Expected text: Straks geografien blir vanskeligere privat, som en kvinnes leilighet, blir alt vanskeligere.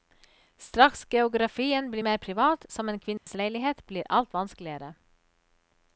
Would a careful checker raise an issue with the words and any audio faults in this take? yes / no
yes